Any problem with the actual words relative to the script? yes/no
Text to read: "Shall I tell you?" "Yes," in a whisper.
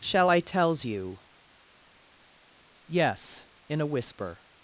yes